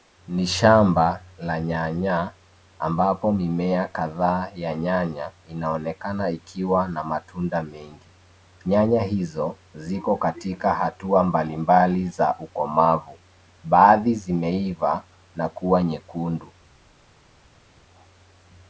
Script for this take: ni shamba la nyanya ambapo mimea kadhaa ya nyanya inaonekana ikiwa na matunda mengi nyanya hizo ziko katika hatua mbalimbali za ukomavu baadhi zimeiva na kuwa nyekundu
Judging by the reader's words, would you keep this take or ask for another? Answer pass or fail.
pass